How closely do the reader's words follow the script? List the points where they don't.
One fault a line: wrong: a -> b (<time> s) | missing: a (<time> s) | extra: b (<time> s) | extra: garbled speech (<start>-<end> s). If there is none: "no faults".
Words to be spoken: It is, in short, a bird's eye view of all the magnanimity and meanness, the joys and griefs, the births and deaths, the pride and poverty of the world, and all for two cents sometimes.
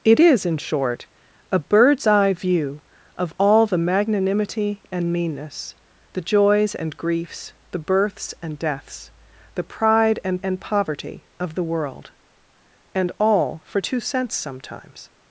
extra: and (10.4 s)